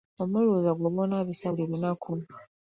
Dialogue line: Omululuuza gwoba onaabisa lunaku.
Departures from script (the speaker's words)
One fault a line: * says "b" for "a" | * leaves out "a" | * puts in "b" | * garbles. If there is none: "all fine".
* puts in "buli"